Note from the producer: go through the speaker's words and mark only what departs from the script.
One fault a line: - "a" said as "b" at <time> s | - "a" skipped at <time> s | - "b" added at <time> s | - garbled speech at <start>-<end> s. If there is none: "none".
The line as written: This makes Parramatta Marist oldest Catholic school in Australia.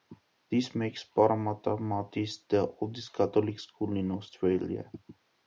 - "the" added at 2.5 s